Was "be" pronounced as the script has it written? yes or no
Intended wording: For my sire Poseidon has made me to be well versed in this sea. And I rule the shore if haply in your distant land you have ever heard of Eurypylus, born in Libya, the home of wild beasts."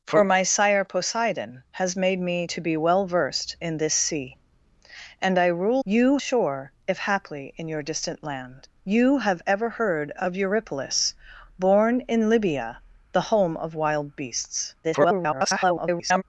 yes